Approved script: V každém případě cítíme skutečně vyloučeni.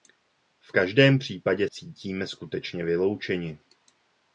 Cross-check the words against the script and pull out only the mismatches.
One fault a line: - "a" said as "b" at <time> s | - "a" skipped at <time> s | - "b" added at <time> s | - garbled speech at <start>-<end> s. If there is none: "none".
none